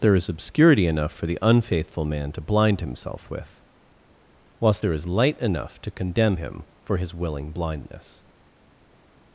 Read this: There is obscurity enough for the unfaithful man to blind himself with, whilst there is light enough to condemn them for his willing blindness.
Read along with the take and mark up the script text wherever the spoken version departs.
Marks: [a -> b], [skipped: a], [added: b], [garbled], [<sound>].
There is obscurity enough for the unfaithful man to blind himself with, whilst there is light enough to condemn [them -> him] for his willing blindness.